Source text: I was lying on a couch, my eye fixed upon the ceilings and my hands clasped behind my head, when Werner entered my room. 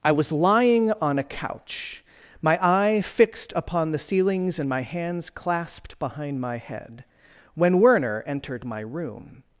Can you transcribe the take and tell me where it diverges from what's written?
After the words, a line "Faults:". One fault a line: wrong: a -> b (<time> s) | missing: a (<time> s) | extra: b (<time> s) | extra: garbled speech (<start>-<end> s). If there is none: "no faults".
I was lying on a couch, my eye fixed upon the ceilings and my hands clasped behind my head, when Werner entered my room.
Faults:
no faults